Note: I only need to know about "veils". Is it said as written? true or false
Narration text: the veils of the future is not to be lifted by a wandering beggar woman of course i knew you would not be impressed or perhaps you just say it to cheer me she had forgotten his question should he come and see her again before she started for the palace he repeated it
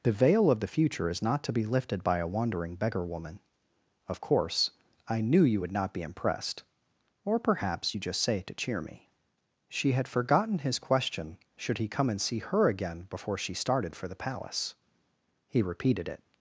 false